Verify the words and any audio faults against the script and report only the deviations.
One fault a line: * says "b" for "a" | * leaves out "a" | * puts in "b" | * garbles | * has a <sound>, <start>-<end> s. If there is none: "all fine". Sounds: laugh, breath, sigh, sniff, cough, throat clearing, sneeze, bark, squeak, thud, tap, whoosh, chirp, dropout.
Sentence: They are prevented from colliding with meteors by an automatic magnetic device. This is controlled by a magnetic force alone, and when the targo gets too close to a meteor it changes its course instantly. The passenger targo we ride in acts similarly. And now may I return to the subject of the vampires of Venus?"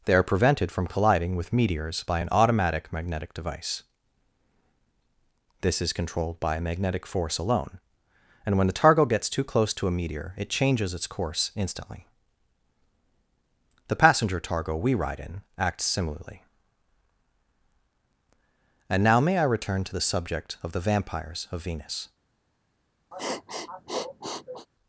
* has a sniff, 23.1-24.7 s